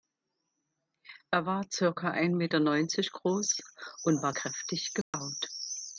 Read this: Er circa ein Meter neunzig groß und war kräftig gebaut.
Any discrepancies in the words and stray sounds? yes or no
yes